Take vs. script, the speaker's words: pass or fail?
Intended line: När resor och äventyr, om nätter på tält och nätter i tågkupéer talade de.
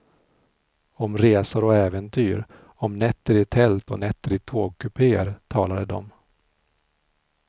fail